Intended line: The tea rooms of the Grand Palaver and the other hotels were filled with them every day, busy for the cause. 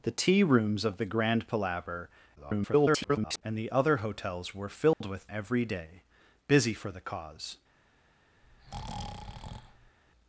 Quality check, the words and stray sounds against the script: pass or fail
fail